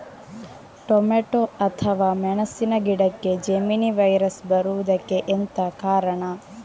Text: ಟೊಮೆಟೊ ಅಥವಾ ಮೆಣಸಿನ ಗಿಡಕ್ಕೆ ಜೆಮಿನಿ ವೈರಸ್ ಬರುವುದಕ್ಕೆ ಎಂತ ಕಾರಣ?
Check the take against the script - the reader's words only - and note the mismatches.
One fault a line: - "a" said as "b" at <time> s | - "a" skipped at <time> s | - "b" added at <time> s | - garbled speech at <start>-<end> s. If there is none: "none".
none